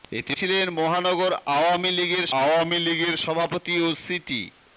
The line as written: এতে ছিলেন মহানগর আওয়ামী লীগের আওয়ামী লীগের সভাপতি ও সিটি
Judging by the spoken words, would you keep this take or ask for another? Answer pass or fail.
pass